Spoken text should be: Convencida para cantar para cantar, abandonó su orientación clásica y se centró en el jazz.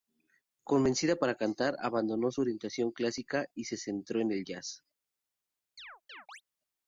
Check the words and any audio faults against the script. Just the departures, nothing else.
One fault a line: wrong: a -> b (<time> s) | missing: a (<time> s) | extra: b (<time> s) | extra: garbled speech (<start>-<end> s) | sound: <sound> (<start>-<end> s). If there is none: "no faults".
missing: para cantar (1.8 s)
sound: chirp (5.8-6.4 s)